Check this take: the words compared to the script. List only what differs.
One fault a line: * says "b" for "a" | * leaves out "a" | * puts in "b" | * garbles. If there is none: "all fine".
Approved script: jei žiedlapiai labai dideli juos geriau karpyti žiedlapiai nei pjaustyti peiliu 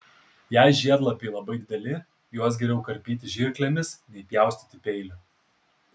* says "žirklėmis" for "žiedlapiai"